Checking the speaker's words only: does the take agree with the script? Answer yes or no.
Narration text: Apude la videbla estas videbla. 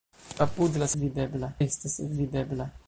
yes